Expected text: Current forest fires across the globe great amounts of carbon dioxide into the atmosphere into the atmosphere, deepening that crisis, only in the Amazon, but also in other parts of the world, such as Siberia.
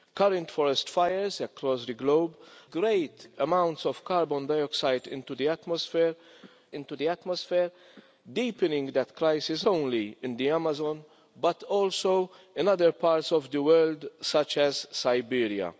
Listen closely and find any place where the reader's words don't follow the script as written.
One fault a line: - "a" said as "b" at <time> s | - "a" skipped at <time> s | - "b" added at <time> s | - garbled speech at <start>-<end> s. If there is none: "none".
none